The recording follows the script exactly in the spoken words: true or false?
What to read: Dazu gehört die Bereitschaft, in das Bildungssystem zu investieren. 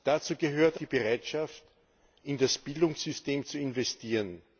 true